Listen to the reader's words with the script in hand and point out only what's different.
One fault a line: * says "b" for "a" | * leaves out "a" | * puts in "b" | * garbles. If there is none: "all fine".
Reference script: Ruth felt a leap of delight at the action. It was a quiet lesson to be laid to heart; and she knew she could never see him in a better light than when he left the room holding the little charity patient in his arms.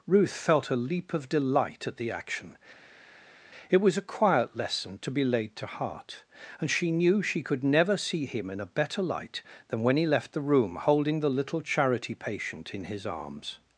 all fine